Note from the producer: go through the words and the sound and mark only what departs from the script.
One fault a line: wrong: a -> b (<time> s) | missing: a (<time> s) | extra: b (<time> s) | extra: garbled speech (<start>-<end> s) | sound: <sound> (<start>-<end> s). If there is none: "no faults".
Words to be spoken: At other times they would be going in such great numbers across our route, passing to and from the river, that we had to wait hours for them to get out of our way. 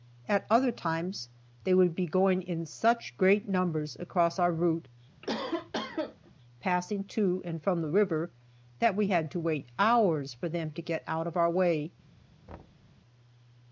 sound: cough (5.2-6.3 s)
sound: thud (12.5-13.0 s)